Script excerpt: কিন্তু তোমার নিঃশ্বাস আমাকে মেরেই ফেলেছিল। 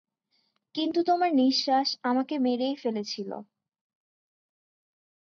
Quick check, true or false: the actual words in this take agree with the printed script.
true